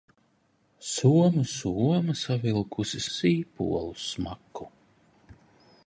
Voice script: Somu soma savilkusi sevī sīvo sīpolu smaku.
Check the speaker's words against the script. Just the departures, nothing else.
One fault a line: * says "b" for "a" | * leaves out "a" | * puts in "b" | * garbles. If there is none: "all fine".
* leaves out "sevī sīvo"